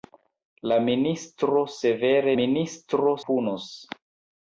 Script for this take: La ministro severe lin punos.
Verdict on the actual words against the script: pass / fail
fail